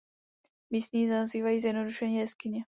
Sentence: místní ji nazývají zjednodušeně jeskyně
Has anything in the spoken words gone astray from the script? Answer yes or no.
no